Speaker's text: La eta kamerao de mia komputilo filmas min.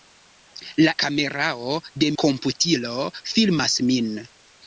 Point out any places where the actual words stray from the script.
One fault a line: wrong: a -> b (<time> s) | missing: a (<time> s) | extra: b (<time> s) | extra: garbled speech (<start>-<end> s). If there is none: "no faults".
missing: eta (0.9 s)
missing: mia (2.1 s)